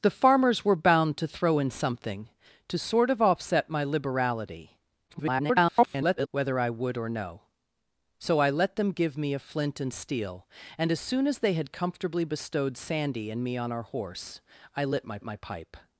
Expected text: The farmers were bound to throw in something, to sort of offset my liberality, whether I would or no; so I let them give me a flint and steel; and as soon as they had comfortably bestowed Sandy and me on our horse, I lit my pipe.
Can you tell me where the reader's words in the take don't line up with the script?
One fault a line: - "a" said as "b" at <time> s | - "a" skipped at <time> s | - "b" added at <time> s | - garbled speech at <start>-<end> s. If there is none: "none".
- garbled speech at 5.1-6.3 s
- "my" added at 15.2 s